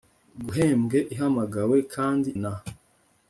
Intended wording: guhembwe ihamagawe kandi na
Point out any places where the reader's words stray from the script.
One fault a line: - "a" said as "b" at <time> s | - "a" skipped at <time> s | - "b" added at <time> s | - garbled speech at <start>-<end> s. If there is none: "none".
none